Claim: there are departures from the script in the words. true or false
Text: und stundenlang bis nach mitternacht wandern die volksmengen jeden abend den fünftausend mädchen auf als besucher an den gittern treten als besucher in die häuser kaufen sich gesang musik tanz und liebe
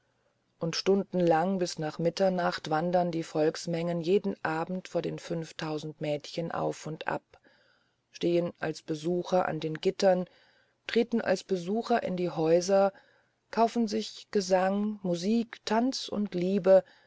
true